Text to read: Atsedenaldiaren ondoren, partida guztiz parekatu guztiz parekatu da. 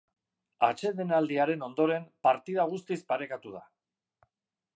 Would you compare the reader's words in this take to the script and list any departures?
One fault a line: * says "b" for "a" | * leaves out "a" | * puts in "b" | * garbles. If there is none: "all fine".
* leaves out "guztiz parekatu"